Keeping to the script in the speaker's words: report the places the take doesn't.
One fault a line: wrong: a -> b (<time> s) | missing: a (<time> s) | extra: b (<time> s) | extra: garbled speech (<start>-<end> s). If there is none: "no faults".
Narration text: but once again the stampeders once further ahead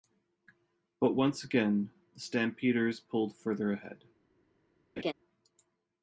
wrong: once -> pulled (3.0 s)